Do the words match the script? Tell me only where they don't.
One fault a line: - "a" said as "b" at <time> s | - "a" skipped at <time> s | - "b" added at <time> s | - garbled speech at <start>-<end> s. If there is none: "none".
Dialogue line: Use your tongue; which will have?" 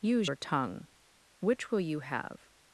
- "you" added at 1.8 s